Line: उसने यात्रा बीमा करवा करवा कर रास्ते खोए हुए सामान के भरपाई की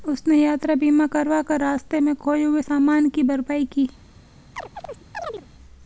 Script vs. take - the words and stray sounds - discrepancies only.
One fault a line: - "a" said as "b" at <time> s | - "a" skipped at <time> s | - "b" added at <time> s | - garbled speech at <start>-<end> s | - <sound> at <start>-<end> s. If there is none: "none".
- "करवा" skipped at 1.4 s
- "में" added at 2.0 s
- "के" said as "की" at 3.1 s
- chirp at 4.6-5.5 s